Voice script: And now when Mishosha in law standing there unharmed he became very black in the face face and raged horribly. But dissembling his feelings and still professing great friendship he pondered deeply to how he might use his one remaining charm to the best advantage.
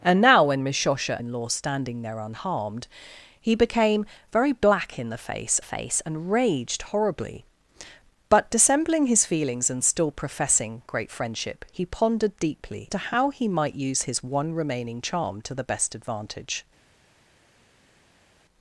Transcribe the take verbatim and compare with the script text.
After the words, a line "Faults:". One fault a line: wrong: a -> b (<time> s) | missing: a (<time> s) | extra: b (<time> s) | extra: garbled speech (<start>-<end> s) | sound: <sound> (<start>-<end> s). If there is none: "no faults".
And now when Mishosha in law standing there unharmed he became very black in the face face and raged horribly. But dissembling his feelings and still professing great friendship he pondered deeply to how he might use his one remaining charm to the best advantage.
Faults:
no faults